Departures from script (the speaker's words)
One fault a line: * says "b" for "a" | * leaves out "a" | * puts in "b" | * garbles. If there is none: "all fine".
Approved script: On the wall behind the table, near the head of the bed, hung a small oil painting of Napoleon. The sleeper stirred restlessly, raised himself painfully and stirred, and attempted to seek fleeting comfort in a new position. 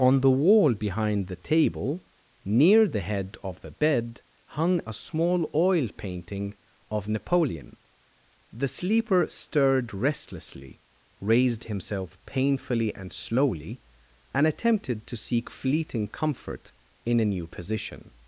* says "slowly" for "stirred"